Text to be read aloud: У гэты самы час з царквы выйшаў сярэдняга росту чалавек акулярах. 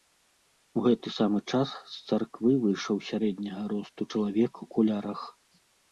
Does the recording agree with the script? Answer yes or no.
yes